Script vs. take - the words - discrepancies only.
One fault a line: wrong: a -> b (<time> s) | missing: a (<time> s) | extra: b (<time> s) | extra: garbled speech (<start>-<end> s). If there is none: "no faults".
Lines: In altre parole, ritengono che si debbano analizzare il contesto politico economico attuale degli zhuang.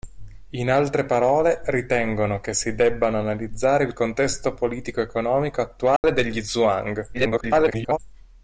extra: garbled speech (7.1-8.0 s)